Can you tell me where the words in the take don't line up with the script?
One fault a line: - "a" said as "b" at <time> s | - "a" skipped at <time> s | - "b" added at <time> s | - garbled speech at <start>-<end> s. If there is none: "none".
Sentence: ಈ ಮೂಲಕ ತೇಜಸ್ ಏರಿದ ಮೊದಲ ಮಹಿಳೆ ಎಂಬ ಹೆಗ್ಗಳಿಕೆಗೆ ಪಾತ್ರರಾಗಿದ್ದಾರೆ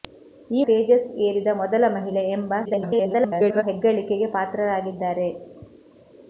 - "ಮೂಲಕ" skipped at 0.6 s
- garbled speech at 2.6-3.6 s